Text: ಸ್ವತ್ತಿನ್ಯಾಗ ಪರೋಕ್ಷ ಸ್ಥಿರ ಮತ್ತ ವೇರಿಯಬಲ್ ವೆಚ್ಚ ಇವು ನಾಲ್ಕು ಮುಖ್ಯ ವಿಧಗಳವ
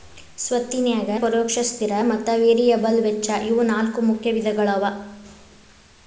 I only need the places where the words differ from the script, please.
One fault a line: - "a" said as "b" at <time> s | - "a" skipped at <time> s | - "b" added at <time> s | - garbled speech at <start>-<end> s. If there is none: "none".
none